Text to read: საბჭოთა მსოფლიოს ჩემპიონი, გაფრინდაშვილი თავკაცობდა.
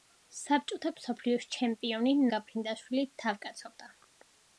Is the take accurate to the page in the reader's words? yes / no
yes